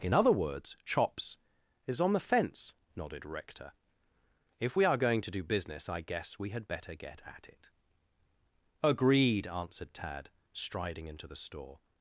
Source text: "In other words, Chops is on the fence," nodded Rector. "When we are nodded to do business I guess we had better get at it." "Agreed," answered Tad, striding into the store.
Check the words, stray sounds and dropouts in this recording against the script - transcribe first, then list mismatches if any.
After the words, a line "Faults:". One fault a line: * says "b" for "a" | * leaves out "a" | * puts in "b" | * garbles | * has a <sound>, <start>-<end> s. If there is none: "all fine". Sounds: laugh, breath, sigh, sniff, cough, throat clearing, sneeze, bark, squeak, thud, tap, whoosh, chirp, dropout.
"In other words, Chops is on the fence," nodded Rector. "If we are going to do business I guess we had better get at it." "Agreed," answered Tad, striding into the store.
Faults:
* says "If" for "When"
* says "going" for "nodded"